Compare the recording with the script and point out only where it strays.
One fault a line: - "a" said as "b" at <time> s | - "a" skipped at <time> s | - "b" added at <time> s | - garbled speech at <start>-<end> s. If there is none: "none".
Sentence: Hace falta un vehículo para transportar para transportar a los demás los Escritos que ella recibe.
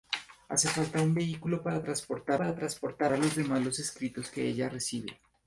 none